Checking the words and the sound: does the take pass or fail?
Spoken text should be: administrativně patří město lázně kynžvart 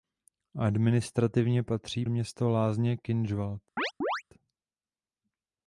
fail